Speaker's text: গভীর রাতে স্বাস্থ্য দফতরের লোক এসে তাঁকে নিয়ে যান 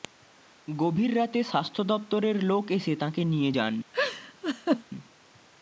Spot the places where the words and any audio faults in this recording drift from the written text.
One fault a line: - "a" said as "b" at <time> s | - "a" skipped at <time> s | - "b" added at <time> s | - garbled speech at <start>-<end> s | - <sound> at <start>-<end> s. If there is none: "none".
- laugh at 3.9-4.8 s